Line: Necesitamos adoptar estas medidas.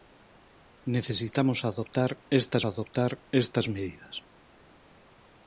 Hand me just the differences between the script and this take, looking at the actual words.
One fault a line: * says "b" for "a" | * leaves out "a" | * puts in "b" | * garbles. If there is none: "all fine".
* puts in "adoptar estas"